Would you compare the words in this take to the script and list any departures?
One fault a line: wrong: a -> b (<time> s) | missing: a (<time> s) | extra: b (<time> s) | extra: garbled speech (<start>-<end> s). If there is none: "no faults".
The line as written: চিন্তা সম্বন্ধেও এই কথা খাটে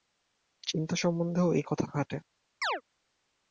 no faults